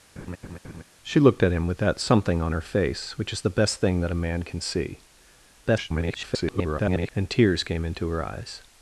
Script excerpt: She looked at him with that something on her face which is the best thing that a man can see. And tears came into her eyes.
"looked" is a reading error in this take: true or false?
false